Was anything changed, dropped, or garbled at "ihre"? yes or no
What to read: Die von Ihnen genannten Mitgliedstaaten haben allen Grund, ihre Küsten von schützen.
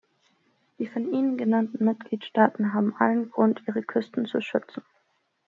no